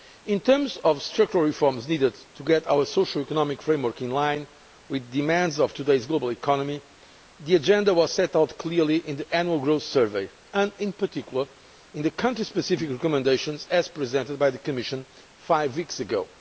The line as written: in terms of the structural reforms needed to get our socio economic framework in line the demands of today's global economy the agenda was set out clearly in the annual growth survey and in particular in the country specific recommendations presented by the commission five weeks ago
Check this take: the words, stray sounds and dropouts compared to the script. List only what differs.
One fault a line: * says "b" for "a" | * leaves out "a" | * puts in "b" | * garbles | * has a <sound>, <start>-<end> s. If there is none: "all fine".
* puts in "with"